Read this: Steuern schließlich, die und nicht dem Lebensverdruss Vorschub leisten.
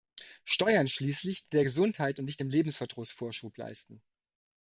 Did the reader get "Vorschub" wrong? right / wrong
right